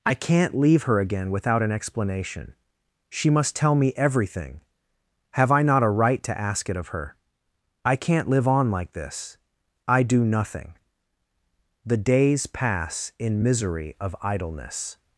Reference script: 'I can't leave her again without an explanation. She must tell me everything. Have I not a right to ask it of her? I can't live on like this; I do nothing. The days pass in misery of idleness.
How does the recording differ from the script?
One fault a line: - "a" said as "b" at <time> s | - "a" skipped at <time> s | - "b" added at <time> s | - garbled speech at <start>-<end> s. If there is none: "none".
none